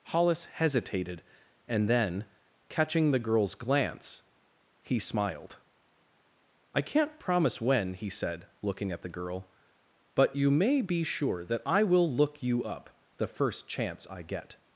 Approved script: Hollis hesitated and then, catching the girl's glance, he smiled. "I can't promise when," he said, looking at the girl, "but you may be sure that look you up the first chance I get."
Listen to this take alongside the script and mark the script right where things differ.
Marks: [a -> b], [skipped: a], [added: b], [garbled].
Hollis hesitated and then, catching the girl's glance, he smiled. "I can't promise when," he said, looking at the girl, "but you may be sure that [added: I will] look you up the first chance I get."